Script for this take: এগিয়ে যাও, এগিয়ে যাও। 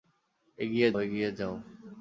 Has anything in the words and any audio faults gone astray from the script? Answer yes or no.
yes